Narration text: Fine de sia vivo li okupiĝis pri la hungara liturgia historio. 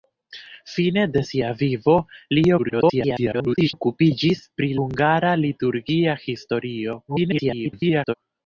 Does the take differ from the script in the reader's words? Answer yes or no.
yes